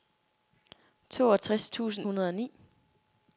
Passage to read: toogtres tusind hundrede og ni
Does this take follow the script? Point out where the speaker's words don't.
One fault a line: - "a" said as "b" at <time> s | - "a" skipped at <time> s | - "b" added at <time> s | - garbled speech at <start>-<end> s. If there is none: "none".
none